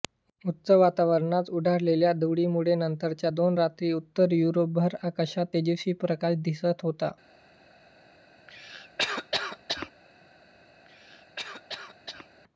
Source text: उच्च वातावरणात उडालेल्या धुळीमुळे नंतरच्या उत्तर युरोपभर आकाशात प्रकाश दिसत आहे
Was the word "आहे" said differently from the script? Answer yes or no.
yes